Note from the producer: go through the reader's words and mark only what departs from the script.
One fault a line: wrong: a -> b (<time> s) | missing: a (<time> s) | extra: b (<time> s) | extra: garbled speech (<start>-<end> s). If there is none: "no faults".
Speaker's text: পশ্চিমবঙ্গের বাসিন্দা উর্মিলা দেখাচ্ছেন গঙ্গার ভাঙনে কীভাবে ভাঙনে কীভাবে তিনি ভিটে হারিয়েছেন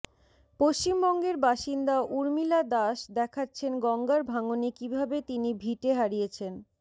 extra: দাস (2.7 s)
missing: ভাঙনে কীভাবে (5.2 s)